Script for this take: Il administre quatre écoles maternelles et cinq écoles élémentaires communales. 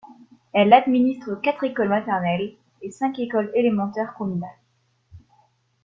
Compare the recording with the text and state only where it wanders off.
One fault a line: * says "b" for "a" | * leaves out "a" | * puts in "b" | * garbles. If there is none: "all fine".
* says "Elle" for "Il"